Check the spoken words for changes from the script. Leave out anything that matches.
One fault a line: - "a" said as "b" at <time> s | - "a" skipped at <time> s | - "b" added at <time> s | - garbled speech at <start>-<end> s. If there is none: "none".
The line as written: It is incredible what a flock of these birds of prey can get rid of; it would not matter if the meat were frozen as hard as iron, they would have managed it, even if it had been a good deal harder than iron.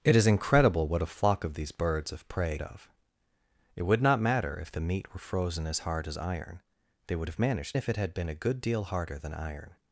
- "can get rid" skipped at 2.6 s
- "it even" skipped at 7.8 s